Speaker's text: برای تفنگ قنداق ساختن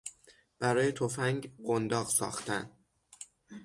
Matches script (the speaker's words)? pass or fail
pass